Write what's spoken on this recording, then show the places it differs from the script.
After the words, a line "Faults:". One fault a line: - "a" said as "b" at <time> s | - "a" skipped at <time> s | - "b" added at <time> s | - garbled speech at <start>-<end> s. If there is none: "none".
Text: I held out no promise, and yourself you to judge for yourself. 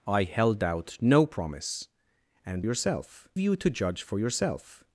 I held out no promise, and yourself you to judge for yourself.
Faults:
none